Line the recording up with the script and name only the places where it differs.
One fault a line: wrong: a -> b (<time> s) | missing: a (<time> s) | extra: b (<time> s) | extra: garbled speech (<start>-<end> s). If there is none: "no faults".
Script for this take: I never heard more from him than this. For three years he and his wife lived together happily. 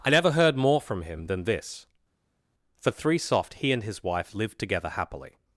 wrong: years -> soft (3.2 s)